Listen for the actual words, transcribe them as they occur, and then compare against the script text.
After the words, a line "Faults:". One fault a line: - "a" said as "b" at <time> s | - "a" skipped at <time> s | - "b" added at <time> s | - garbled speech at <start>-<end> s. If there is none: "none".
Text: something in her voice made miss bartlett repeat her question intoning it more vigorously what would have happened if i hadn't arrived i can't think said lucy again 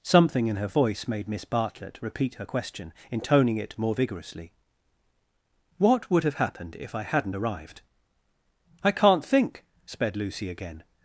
something in her voice made miss bartlett repeat her question intoning it more vigorously what would have happened if i hadn't arrived i can't think sped lucy again
Faults:
- "said" said as "sped" at 9.9 s